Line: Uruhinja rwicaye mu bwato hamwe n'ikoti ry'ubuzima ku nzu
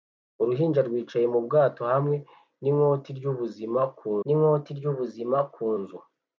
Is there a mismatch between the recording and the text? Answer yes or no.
yes